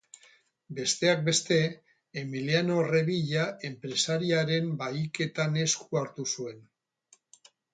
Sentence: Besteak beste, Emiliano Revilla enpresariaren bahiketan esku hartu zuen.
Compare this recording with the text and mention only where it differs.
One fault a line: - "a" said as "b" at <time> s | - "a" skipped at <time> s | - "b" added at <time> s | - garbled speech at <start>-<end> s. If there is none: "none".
none